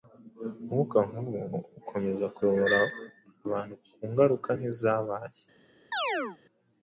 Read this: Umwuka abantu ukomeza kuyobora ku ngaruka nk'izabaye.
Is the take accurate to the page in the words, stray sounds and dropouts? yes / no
no